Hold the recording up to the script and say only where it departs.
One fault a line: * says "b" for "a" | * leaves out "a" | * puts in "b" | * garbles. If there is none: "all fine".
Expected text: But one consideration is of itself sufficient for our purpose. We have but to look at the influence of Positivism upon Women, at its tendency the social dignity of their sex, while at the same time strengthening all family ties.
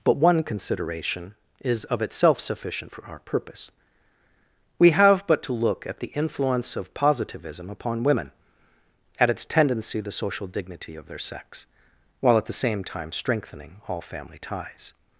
all fine